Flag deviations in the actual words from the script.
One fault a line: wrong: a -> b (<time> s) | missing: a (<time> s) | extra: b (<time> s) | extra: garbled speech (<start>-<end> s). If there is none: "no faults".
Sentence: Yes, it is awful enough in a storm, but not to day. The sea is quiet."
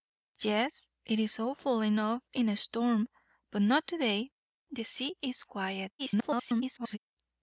extra: garbled speech (6.0-7.0 s)